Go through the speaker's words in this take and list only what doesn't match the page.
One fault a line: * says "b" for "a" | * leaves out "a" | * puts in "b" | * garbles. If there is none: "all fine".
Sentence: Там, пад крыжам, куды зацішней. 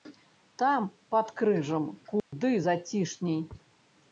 all fine